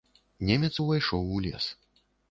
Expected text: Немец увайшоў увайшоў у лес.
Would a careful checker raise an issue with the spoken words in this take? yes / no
yes